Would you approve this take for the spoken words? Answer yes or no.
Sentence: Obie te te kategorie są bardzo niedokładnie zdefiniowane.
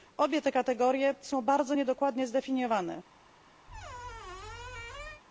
no